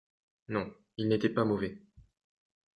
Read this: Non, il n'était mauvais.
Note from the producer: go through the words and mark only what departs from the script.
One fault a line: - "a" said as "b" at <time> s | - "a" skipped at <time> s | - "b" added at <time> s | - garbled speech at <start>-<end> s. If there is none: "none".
- "pas" added at 1.3 s